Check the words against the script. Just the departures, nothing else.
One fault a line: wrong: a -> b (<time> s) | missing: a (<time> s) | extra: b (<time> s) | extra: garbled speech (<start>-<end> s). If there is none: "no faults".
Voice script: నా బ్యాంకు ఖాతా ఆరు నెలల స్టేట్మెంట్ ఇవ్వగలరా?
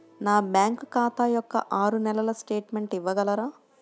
extra: యొక్క (1.3 s)